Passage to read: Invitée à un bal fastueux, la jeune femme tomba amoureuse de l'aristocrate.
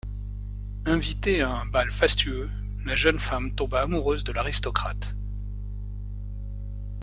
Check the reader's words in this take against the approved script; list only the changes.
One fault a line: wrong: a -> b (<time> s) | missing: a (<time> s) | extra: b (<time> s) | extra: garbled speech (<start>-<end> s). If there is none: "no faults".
no faults